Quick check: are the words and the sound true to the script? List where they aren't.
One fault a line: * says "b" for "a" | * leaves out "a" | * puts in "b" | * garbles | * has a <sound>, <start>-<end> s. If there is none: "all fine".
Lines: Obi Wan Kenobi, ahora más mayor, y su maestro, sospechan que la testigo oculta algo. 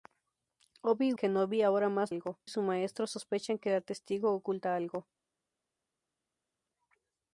* leaves out "Wan"
* says "algo" for "mayor"